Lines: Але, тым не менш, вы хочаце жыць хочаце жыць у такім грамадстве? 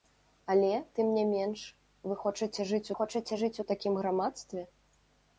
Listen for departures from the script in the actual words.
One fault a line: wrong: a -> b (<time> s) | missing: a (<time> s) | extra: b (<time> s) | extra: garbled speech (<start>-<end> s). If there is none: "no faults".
no faults